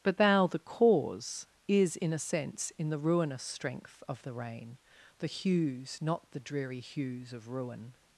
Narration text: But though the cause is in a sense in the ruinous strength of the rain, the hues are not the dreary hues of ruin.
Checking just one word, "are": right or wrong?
wrong